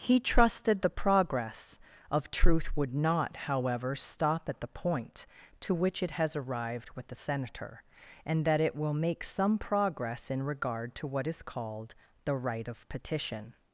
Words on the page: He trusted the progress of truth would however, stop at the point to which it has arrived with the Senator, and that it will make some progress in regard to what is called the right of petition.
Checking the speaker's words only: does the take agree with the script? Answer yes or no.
no